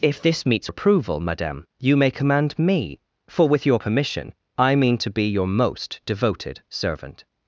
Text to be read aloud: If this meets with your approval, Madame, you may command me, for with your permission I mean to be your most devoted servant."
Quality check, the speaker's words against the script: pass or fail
fail